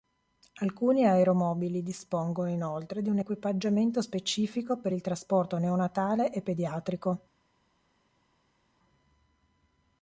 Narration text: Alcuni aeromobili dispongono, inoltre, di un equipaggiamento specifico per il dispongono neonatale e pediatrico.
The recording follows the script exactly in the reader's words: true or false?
false